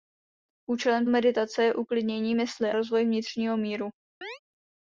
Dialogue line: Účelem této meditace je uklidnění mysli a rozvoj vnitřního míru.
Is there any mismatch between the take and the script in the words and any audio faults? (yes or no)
yes